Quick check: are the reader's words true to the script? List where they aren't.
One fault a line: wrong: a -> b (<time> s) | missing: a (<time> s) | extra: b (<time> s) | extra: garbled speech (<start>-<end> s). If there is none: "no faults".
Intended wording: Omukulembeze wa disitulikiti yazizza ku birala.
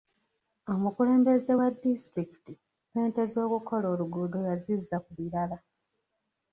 extra: ssente z'okukola oluguudo (2.6 s)